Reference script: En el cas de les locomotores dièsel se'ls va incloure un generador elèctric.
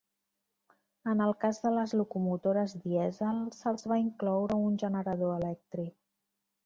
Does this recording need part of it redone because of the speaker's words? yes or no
no